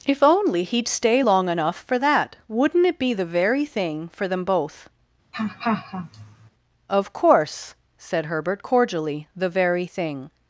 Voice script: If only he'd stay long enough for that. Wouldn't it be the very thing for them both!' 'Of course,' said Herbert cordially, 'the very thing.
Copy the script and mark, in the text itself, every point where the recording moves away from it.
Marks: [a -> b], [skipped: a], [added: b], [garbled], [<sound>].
If only he'd stay long enough for that. Wouldn't it be the very thing for them both!' [laugh] 'Of course,' said Herbert cordially, 'the very thing.